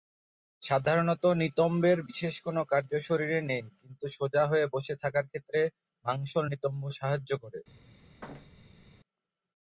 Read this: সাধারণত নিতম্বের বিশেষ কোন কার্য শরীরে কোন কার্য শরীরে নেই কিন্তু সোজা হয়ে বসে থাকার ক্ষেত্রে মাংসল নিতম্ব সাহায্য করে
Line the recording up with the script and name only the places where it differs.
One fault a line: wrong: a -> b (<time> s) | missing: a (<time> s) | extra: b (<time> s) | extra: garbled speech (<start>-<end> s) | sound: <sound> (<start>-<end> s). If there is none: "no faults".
missing: কোন কার্য শরীরে (3.4 s)
sound: thud (8.2-8.9 s)